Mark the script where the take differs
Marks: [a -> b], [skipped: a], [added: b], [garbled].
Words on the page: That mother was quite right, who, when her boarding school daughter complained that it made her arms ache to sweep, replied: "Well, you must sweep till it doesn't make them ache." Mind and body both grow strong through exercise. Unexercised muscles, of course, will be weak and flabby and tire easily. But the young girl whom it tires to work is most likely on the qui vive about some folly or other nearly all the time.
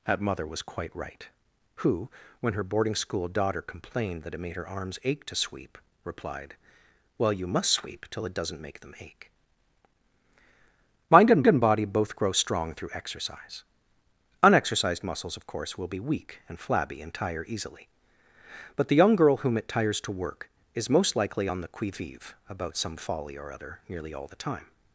That mother was quite right, who, when her boarding school daughter complained that it made her arms ache to sweep, replied: "Well, you must sweep till it doesn't make them ache." Mind and [added: and] body both grow strong through exercise. Unexercised muscles, of course, will be weak and flabby and tire easily. But the young girl whom it tires to work is most likely on the qui vive about some folly or other nearly all the time.